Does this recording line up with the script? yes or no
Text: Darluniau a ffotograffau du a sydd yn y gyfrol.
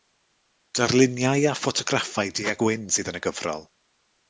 no